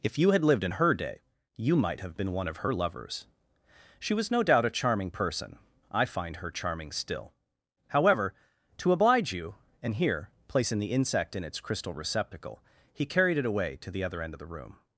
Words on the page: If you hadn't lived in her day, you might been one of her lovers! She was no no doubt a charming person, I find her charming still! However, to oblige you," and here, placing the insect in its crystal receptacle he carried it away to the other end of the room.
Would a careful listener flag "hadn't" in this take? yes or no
yes